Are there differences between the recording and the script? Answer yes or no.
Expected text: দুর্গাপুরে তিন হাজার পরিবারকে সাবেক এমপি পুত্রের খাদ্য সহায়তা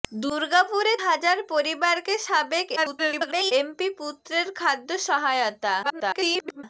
yes